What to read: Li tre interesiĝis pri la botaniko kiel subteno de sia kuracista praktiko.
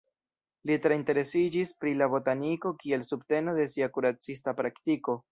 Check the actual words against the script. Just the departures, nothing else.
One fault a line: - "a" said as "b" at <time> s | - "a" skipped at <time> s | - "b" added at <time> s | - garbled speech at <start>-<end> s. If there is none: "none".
none